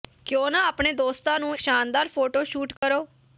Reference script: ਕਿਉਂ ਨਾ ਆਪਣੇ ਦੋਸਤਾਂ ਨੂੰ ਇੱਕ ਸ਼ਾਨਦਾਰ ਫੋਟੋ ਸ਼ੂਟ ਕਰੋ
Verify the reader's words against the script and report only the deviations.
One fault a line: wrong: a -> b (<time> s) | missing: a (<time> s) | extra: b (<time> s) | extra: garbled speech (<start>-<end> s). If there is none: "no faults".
missing: ਇੱਕ (1.6 s)